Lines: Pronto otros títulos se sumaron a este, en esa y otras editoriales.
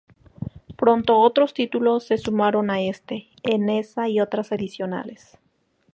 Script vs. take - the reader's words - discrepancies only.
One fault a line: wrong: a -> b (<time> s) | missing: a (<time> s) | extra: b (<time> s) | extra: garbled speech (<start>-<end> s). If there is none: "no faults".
no faults